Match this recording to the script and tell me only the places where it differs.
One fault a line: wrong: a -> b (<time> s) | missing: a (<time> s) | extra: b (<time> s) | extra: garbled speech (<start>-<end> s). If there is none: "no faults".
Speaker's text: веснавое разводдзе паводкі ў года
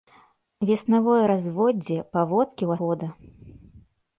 no faults